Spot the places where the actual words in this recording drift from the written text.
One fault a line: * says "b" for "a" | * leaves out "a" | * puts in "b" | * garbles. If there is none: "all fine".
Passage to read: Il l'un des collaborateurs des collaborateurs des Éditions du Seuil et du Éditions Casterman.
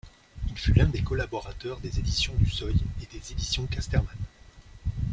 * puts in "fut"
* leaves out "collaborateurs des"
* says "des" for "du"